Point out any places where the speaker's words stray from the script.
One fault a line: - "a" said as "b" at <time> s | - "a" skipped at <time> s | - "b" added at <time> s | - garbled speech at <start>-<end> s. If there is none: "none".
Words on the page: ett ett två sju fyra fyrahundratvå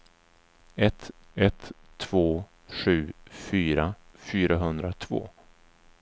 none